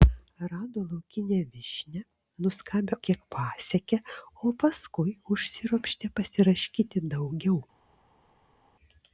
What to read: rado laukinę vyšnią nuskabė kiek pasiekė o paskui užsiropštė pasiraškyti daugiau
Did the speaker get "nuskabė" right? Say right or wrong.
right